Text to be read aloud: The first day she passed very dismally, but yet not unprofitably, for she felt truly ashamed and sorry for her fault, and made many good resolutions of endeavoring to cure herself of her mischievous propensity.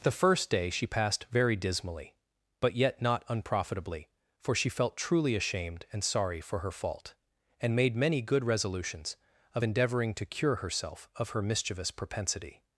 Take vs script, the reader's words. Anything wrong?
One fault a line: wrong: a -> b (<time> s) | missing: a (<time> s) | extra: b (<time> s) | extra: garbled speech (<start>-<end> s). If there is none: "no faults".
no faults